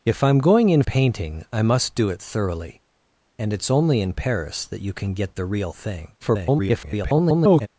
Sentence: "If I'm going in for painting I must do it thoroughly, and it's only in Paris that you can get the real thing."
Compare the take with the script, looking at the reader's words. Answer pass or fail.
fail